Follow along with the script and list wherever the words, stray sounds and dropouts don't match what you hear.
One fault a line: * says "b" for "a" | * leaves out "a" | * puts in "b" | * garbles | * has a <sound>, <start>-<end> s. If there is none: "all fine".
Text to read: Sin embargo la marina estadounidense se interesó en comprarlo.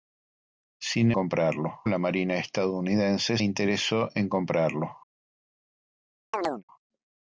* says "comprarlo" for "embargo"
* leaves out "se"
* has a chirp, 6.3-6.6 s